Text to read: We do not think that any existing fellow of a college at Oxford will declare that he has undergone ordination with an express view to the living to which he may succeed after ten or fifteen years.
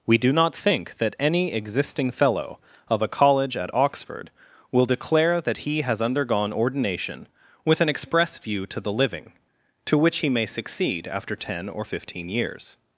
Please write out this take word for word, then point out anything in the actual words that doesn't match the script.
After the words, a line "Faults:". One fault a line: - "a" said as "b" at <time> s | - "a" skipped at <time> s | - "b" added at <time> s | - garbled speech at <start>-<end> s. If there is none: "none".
We do not think that any existing fellow of a college at Oxford will declare that he has undergone ordination with an express view to the living to which he may succeed after ten or fifteen years.
Faults:
none